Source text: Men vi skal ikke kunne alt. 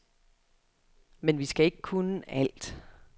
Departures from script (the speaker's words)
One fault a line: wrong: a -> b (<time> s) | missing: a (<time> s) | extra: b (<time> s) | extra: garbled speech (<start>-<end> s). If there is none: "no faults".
no faults